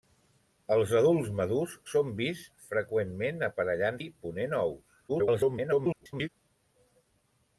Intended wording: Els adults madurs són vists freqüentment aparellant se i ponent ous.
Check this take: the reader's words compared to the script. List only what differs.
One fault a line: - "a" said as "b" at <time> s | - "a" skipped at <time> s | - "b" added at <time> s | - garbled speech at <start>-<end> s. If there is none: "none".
- "se" skipped at 4.0 s
- garbled speech at 5.1-6.3 s